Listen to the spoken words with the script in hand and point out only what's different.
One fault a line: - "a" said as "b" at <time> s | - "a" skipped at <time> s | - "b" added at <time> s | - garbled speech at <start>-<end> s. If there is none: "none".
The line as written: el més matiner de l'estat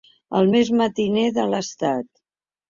none